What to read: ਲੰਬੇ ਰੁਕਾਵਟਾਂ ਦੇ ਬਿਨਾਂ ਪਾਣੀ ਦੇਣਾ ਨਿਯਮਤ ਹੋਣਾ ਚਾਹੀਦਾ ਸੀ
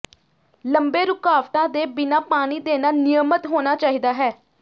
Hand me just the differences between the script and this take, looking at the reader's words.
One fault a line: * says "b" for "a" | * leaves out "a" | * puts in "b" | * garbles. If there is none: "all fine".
* says "ਹੈ" for "ਸੀ"